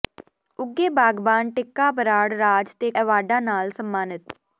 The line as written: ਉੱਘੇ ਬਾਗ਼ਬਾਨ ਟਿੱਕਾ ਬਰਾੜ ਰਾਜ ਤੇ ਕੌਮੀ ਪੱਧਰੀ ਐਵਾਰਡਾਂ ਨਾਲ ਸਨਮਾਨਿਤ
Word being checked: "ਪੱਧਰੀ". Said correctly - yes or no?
no